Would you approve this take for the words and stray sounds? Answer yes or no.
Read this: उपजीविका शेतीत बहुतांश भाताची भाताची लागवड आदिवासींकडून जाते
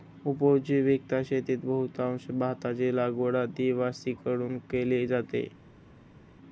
no